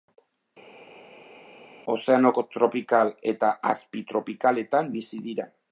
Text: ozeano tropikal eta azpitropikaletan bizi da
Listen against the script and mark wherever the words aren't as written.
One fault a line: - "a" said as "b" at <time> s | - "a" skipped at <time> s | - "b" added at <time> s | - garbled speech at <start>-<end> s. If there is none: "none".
- "da" said as "dira" at 5.3 s